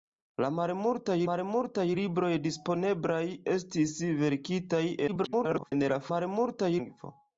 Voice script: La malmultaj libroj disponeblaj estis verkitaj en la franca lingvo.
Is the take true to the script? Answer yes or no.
no